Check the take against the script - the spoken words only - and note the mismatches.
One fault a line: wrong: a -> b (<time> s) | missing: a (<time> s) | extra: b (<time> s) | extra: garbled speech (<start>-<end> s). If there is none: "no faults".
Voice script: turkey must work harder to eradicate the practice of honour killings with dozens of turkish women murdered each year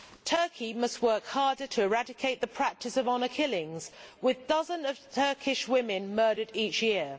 no faults